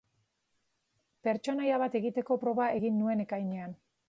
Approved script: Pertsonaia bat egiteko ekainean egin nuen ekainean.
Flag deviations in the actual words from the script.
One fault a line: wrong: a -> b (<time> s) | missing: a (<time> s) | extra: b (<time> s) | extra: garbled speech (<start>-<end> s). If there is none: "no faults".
wrong: ekainean -> proba (2.4 s)